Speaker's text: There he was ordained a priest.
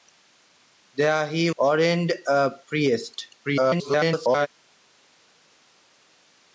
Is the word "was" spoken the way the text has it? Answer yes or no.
no